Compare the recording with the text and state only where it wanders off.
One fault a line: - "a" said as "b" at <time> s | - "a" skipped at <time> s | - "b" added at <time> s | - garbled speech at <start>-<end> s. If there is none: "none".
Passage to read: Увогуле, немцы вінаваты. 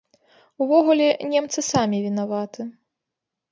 - "самі" added at 1.7 s